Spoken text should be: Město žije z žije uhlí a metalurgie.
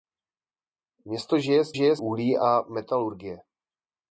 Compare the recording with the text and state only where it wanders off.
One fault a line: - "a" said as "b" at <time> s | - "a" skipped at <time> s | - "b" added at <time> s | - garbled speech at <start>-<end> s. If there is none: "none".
none